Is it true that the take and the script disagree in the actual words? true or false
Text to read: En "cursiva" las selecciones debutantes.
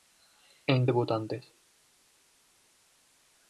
true